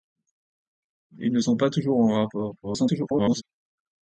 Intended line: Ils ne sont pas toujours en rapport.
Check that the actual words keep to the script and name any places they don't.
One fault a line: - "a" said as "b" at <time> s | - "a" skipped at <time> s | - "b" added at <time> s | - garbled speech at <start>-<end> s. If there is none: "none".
- garbled speech at 2.6-3.4 s